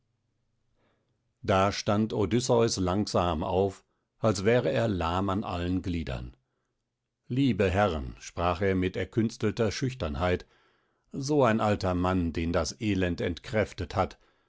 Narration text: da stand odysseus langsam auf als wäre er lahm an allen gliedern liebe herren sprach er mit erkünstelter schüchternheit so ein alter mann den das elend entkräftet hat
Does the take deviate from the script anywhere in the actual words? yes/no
no